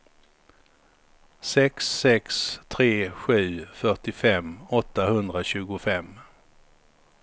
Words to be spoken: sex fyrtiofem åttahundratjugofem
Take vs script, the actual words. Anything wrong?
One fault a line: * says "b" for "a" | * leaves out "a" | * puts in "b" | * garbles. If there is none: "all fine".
* puts in "sex tre sju"